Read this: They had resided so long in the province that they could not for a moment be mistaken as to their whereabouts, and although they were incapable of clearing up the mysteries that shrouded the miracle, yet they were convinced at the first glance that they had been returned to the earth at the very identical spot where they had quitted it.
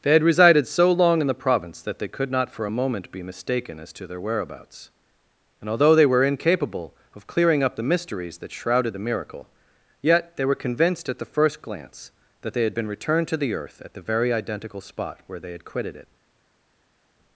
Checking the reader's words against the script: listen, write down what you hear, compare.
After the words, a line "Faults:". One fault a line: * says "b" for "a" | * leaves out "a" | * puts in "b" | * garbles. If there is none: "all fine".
They had resided so long in the province that they could not for a moment be mistaken as to their whereabouts, and although they were incapable of clearing up the mysteries that shrouded the miracle, yet they were convinced at the first glance that they had been returned to the earth at the very identical spot where they had quitted it.
Faults:
all fine